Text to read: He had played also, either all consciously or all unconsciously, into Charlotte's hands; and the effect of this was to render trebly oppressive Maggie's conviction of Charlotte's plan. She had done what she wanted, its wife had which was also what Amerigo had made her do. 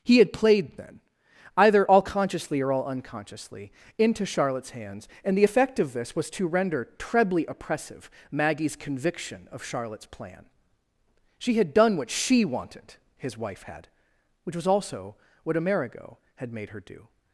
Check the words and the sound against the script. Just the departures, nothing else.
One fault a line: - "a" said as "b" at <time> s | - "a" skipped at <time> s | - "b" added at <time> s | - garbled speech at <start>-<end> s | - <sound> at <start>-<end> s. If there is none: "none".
- "also" said as "then" at 0.8 s
- "its" said as "his" at 13.2 s